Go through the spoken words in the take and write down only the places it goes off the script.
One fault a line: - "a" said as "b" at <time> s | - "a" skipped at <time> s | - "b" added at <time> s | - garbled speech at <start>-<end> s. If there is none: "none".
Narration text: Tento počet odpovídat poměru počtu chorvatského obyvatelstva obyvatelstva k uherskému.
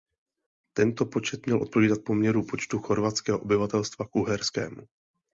- "měl" added at 1.4 s
- "obyvatelstva" skipped at 4.0 s